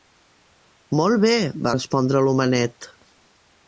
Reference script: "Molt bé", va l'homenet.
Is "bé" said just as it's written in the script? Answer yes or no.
yes